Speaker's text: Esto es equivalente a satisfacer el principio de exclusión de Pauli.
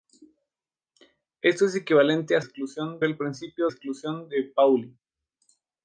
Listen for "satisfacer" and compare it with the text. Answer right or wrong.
wrong